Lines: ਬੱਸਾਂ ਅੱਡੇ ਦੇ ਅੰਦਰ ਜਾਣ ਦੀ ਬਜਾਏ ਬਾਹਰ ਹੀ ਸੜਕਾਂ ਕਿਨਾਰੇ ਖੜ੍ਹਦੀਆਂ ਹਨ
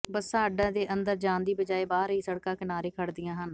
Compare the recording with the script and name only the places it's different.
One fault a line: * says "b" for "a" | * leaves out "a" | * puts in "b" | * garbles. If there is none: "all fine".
all fine